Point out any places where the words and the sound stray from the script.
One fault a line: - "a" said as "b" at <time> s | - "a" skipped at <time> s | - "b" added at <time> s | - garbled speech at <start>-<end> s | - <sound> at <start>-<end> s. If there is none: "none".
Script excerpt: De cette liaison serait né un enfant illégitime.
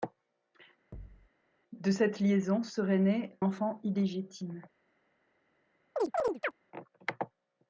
- thud at 0.9-1.3 s
- "un" skipped at 3.4 s
- chirp at 6.0-6.5 s